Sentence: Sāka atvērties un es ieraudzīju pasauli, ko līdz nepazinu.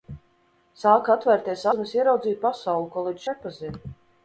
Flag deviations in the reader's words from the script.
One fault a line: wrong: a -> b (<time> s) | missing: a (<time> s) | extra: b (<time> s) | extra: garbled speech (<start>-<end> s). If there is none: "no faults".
no faults